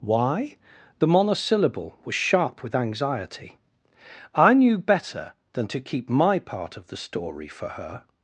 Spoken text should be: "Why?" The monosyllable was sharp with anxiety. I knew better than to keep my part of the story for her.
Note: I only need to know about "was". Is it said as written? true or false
true